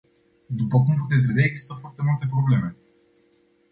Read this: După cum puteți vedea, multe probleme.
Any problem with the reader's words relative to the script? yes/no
yes